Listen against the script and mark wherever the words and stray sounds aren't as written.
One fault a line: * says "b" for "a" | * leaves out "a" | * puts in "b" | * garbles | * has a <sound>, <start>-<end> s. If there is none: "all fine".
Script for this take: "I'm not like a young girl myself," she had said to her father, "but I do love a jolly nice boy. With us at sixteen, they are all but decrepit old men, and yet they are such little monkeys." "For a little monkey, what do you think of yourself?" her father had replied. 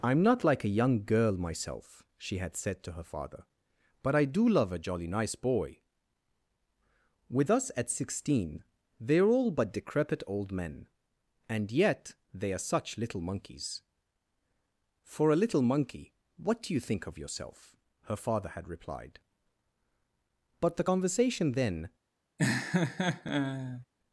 * puts in "But the conversation then"
* has a laugh, 22.4-23.9 s